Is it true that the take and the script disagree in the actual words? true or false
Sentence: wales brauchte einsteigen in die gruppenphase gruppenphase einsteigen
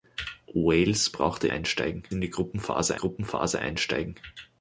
false